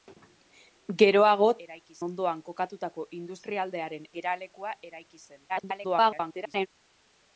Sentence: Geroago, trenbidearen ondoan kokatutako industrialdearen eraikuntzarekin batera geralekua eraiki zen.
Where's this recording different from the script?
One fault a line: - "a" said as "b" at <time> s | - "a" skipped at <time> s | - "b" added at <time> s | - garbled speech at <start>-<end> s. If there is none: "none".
- "trenbidearen" said as "eraiki" at 1.7 s
- "eraikuntzarekin batera" skipped at 4.1 s
- garbled speech at 5.5-6.7 s